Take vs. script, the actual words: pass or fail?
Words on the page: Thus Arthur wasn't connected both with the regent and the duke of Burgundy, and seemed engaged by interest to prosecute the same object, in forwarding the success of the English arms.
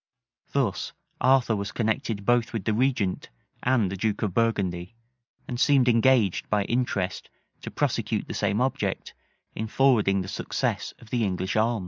fail